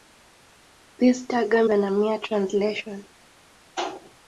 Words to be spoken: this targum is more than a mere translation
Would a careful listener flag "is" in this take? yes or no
yes